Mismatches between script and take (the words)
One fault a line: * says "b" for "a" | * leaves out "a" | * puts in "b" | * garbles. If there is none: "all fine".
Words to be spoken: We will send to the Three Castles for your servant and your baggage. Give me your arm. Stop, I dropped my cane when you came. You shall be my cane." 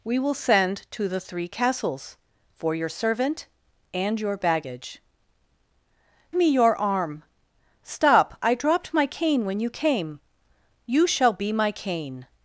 * leaves out "Give"